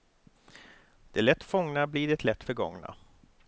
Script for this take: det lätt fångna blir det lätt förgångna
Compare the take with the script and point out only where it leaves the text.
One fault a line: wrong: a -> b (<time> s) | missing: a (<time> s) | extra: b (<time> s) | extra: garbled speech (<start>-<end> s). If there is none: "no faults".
no faults